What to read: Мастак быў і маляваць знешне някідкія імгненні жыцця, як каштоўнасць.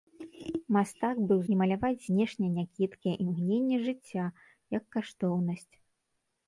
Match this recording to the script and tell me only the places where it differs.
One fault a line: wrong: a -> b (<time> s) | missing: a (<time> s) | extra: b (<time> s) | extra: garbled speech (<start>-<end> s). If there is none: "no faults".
no faults